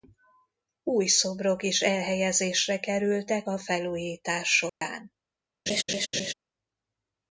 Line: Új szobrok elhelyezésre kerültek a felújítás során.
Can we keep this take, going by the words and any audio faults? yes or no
no